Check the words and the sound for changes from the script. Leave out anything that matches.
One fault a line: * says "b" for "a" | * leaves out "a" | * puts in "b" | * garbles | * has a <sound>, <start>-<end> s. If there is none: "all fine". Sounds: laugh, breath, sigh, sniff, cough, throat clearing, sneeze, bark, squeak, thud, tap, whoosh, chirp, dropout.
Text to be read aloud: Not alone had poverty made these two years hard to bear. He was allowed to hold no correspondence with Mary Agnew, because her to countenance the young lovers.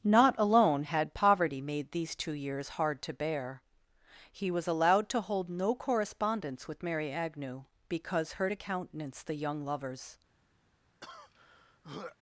* has a throat clearing, 11.0-12.2 s